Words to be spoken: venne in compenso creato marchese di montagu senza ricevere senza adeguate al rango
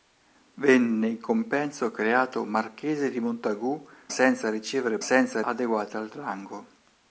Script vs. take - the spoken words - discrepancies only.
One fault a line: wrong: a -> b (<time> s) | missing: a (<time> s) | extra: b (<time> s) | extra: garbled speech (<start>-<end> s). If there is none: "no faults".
no faults